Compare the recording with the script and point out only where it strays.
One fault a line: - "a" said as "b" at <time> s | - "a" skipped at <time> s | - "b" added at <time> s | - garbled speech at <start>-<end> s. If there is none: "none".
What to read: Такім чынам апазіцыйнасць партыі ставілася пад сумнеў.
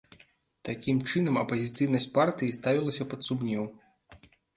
none